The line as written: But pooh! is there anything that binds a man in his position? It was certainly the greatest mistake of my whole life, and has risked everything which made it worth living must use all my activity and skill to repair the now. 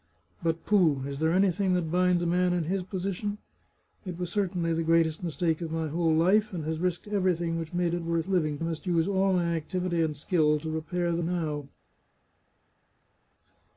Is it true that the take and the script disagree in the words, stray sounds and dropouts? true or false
false